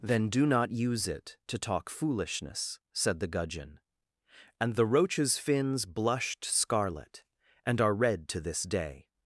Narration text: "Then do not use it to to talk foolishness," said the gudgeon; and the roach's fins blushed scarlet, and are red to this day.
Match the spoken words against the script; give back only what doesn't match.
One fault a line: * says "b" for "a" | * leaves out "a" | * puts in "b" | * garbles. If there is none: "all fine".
* leaves out "to"